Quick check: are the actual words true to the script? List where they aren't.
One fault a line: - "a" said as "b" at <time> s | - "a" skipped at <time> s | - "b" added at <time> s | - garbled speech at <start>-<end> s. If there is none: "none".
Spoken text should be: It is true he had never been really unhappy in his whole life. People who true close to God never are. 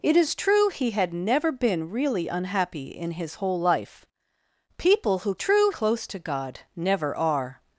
none